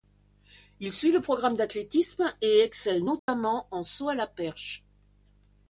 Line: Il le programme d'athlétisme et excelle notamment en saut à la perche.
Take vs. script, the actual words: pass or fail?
fail